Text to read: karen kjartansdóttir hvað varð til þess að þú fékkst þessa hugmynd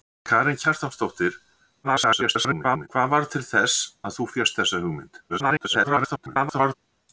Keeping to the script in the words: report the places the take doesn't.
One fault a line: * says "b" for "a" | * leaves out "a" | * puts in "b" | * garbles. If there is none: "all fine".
* garbles
* garbles